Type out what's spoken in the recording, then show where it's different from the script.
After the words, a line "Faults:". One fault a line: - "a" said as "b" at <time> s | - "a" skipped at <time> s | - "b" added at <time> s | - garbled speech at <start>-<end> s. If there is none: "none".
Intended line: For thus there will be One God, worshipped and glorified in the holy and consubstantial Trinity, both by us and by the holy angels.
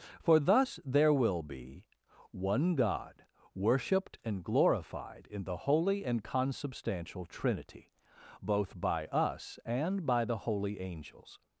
For thus there will be One God, worshipped and glorified in the holy and consubstantial Trinity, both by us and by the holy angels.
Faults:
none